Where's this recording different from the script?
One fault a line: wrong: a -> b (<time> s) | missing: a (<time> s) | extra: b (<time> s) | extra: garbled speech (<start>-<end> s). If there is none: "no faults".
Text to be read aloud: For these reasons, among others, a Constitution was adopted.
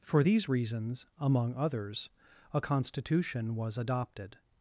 no faults